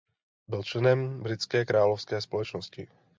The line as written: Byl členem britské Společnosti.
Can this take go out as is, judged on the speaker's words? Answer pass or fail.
fail